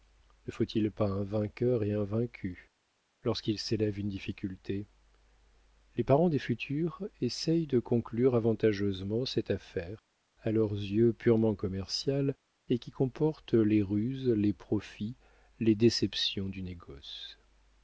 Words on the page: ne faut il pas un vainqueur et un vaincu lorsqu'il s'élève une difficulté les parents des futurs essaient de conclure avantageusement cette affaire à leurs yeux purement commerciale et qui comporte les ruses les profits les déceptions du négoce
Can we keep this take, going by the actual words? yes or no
yes